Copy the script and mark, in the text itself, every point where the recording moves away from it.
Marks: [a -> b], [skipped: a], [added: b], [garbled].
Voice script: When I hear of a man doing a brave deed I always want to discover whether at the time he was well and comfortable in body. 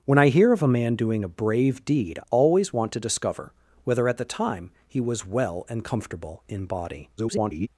When I hear of a man doing a brave deed [skipped: I] always want to discover whether at the time he was well and comfortable in body. [garbled]